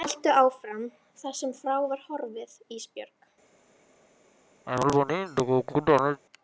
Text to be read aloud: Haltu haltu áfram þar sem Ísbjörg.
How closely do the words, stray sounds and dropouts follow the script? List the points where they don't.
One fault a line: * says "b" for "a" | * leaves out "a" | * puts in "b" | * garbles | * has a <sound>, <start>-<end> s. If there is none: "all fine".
* leaves out "haltu"
* puts in "frá var horfið"
* has a cough, 4.7-6.2 s